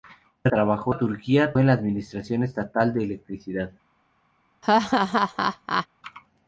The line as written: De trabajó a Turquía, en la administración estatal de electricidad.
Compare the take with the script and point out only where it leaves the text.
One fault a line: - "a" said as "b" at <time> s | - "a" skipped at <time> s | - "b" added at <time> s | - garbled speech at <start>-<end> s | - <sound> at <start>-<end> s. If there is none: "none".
- laugh at 4.6-5.9 s